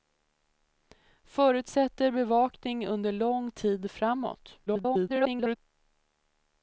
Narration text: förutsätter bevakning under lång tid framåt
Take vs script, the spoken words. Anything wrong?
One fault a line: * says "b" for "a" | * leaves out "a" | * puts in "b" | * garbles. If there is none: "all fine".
* garbles